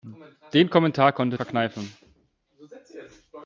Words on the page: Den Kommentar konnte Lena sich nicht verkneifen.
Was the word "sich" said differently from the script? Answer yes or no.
yes